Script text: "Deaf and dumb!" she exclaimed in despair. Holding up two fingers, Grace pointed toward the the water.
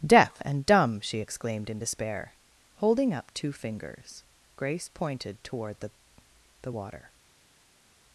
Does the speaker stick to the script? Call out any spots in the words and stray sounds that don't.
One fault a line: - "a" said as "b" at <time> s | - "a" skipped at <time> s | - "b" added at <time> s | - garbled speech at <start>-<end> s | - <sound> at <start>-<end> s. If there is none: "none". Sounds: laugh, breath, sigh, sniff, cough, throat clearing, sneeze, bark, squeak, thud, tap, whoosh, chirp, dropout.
none